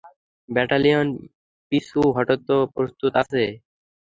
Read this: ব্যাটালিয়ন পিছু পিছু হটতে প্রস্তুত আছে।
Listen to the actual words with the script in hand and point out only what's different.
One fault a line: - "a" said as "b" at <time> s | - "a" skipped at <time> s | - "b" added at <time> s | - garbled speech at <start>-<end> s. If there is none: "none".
- "পিছু" skipped at 2.0 s